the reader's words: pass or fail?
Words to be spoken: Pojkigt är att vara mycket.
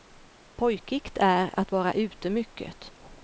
fail